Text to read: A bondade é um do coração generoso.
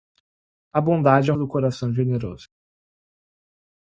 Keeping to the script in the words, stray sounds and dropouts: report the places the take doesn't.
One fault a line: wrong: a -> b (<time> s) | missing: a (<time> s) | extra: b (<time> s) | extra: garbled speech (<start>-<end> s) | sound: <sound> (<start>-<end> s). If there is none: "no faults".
no faults